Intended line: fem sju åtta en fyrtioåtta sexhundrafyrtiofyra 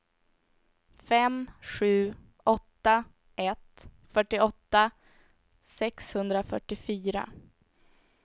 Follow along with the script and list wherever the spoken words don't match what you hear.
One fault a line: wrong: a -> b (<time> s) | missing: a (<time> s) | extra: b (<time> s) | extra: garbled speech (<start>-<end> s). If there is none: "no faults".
wrong: en -> ett (3.4 s)